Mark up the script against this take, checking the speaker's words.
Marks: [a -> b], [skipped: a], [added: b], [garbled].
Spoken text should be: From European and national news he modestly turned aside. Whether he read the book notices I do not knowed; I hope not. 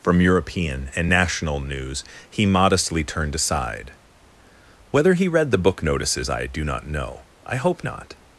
From European and national news he modestly turned aside. Whether he read the book notices I do not [knowed; -> know] I hope not.